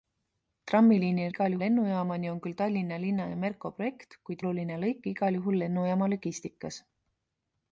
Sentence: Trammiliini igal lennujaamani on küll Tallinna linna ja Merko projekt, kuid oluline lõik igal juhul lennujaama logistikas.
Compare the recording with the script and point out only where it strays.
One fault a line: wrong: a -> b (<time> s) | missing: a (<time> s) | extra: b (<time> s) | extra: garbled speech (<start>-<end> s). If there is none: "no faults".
no faults